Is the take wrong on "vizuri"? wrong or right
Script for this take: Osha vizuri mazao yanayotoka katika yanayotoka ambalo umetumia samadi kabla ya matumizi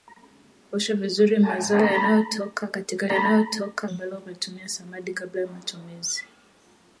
right